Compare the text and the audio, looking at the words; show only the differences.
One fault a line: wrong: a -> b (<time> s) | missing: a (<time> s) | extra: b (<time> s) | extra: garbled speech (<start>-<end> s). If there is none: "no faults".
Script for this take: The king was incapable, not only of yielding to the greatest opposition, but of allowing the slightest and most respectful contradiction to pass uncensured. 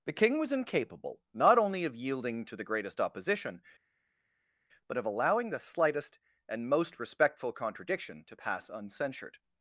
no faults